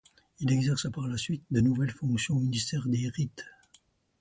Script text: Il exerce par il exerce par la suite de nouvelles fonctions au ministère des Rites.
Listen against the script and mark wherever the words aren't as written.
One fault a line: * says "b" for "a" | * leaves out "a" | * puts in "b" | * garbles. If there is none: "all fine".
* leaves out "il exerce par"